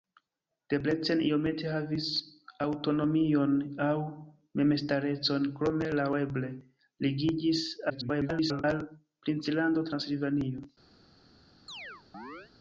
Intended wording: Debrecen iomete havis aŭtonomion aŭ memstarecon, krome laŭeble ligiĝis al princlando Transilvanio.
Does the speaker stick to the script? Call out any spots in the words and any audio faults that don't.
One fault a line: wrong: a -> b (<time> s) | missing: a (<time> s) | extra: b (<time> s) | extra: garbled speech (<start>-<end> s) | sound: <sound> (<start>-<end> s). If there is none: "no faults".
extra: garbled speech (7.9-8.6 s)
sound: chirp (11.7-12.5 s)